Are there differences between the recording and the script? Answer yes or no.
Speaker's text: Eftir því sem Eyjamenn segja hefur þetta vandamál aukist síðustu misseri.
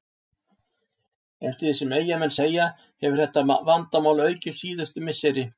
no